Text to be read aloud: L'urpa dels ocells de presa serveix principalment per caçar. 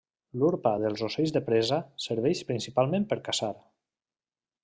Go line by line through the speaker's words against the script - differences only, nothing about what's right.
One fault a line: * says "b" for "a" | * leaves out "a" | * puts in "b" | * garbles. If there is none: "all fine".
all fine